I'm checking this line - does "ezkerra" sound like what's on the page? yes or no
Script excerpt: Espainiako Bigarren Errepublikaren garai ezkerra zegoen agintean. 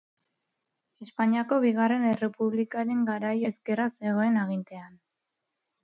yes